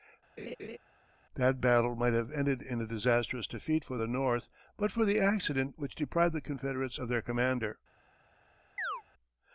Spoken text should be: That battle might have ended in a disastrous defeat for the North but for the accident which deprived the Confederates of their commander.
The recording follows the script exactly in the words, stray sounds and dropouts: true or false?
false